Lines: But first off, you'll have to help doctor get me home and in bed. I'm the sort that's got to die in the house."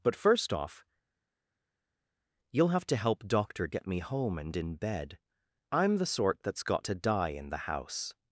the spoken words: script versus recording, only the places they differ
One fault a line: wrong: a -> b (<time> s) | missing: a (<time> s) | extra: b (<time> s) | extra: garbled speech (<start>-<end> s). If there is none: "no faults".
no faults